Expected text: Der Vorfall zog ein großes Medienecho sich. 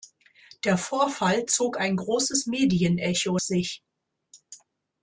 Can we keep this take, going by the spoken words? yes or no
yes